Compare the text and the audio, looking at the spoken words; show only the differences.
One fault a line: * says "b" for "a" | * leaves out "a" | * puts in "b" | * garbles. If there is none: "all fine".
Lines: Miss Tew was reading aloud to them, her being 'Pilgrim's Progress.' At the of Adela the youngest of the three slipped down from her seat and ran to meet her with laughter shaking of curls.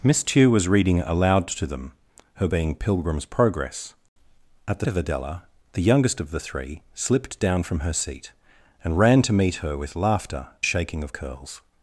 all fine